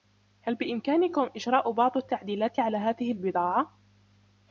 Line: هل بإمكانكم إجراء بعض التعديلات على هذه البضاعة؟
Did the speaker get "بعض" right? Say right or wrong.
right